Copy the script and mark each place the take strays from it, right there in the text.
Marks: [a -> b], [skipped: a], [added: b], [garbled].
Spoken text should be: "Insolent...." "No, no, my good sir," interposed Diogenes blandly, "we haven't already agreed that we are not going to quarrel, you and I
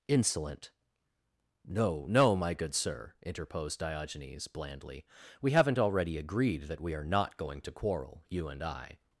"Insolent...." "No, no, my good sir," interposed Diogenes blandly, "we haven't already agreed that we are not going to quarrel, you and I